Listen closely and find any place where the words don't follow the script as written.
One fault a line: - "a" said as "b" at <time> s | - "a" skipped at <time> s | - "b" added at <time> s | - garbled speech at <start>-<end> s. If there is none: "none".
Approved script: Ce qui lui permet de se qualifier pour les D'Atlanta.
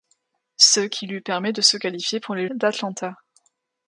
none